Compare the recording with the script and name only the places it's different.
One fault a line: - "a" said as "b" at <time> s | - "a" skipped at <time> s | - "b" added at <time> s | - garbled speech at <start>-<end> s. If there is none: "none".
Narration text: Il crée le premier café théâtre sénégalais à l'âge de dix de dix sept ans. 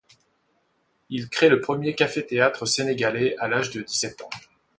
- "de dix" skipped at 4.0 s